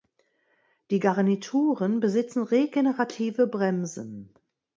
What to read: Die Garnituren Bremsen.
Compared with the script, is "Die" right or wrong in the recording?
right